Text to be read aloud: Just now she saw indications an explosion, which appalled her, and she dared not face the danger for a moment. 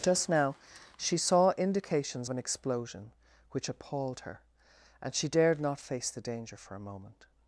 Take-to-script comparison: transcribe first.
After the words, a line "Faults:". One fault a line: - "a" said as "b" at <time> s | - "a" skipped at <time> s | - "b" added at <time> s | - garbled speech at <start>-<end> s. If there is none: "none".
Just now she saw indications an explosion, which appalled her, and she dared not face the danger for a moment.
Faults:
none